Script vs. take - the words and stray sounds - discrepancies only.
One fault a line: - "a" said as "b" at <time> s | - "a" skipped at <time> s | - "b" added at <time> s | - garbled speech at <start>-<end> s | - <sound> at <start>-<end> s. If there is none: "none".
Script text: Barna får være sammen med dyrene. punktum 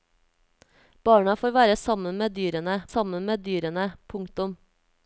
- "sammen med dyrene" added at 2.9 s